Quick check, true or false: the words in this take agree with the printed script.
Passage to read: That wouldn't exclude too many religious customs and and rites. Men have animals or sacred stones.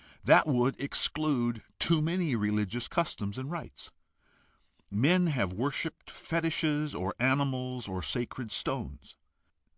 false